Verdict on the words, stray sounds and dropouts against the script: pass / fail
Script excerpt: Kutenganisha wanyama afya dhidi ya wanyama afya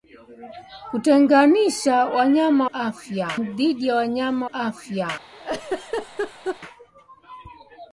fail